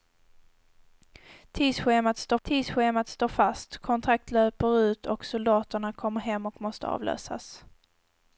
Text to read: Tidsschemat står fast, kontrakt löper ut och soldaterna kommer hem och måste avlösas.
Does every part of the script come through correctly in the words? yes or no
no